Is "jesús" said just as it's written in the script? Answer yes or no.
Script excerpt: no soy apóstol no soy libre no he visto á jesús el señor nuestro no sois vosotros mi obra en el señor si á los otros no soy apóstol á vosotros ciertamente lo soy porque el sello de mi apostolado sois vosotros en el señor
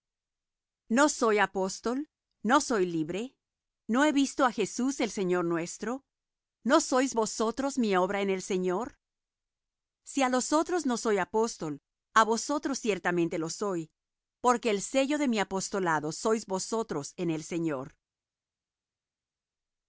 yes